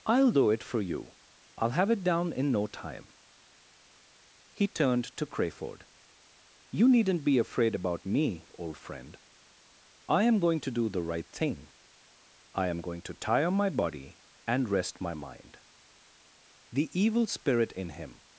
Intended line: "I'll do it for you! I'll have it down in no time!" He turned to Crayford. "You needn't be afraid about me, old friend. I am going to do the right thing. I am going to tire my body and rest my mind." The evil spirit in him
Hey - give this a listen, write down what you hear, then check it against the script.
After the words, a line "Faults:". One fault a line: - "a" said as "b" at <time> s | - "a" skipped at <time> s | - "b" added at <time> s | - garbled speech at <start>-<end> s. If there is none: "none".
"I'll do it for you! I'll have it down in no time!" He turned to Crayford. "You needn't be afraid about me, old friend. I am going to do the right thing. I am going to tire my body and rest my mind." The evil spirit in him
Faults:
none